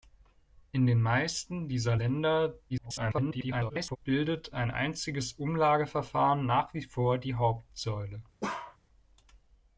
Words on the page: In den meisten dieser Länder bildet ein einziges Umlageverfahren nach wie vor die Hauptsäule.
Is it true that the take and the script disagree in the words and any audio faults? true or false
true